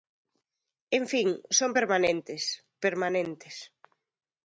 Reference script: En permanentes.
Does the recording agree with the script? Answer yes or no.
no